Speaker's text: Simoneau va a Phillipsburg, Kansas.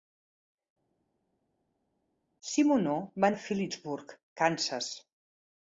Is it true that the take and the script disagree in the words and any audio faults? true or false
false